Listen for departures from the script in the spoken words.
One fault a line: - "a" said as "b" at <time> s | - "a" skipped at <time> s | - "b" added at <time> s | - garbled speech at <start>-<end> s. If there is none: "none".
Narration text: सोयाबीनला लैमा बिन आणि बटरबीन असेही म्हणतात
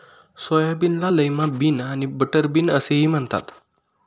none